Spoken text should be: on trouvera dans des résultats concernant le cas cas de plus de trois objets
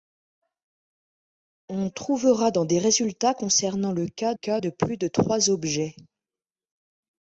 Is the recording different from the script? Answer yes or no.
no